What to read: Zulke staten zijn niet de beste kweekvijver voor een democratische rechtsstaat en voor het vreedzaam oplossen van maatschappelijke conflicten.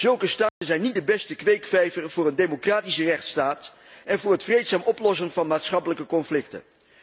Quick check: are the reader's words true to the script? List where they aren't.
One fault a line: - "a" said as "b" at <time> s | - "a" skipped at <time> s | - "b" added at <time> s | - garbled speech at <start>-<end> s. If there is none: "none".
none